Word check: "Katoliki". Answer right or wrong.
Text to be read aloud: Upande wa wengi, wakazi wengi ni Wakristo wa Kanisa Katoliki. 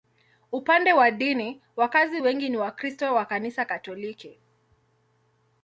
right